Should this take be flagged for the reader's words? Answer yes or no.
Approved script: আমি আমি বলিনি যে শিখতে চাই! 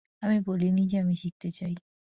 yes